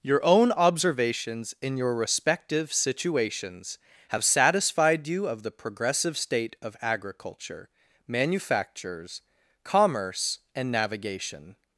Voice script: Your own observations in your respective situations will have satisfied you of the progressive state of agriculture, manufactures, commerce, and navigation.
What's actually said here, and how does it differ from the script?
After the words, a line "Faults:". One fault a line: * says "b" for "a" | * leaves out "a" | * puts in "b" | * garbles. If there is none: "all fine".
Your own observations in your respective situations have satisfied you of the progressive state of agriculture, manufactures, commerce, and navigation.
Faults:
* leaves out "will"